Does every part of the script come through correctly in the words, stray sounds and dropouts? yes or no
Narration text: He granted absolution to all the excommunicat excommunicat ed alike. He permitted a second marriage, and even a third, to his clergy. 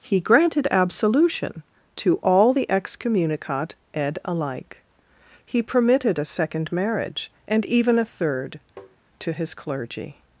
no